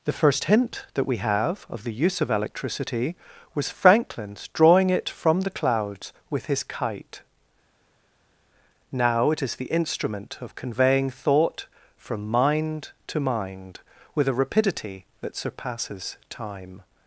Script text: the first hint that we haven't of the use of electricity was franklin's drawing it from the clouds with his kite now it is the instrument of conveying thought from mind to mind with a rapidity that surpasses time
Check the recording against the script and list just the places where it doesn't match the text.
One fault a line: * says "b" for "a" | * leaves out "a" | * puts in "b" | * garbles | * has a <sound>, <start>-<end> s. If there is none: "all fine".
* says "have" for "haven't"